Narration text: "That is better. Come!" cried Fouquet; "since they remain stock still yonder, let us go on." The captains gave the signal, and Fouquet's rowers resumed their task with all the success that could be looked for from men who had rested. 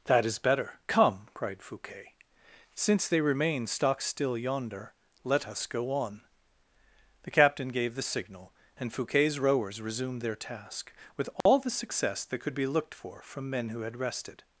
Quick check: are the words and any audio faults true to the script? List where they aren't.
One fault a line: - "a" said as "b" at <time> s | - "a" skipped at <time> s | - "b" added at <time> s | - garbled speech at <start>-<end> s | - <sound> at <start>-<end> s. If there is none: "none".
- "captains" said as "captain" at 7.3 s
- dropout at 11.4-11.5 s